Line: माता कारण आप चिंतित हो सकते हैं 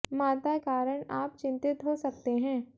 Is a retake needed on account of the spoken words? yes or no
no